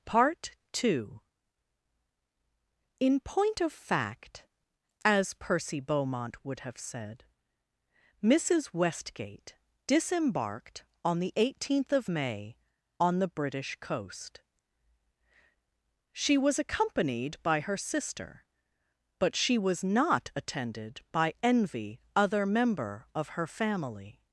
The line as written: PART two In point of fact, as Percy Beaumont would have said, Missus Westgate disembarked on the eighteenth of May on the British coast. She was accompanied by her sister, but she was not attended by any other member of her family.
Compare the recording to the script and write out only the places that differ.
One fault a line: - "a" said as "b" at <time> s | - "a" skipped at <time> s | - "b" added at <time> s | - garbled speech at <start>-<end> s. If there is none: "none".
- "any" said as "envy" at 21.4 s